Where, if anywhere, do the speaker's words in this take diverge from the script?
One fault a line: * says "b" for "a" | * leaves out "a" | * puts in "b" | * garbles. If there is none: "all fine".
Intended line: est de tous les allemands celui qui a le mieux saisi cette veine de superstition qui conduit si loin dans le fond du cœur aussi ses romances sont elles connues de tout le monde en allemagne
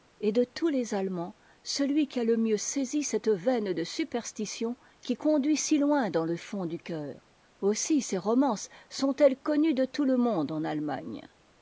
all fine